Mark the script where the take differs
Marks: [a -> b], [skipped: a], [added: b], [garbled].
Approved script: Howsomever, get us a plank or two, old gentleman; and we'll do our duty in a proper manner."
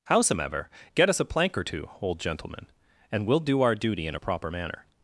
Howsomever, get us a plank or two, old gentleman; and we'll do our duty in a proper manner."